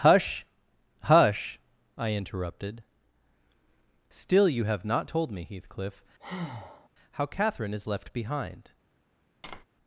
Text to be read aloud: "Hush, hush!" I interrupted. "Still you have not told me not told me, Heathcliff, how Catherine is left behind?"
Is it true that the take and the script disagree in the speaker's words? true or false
true